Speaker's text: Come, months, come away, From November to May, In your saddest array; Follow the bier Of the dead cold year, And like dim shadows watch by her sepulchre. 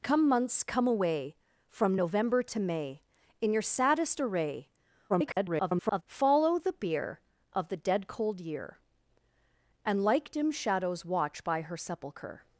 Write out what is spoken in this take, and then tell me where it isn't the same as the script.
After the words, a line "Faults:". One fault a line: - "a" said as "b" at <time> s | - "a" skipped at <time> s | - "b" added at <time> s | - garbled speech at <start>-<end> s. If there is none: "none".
Come, months, come away, From November to May, In your saddest array; [garbled] Follow the bier Of the dead cold year, And like dim shadows watch by her sepulchre.
Faults:
- garbled speech at 5.1-6.0 s